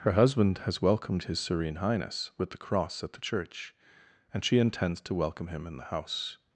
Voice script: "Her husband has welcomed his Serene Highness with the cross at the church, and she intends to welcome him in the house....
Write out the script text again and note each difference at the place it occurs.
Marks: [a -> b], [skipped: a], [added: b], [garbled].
"Her husband has welcomed his Serene Highness with the cross at the church, and she intends to welcome him in the house....